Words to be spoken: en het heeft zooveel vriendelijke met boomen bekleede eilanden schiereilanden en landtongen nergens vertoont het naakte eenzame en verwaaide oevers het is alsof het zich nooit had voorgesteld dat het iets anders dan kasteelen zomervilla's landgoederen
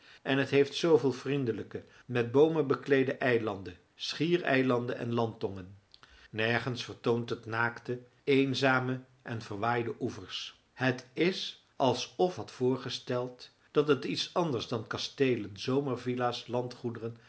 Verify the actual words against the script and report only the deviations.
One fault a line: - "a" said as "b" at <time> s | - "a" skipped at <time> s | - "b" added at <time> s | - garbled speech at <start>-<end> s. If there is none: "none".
- "het zich nooit" skipped at 12.4 s